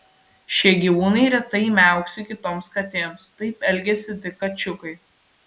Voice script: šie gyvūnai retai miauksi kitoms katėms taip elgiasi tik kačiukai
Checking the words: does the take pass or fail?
pass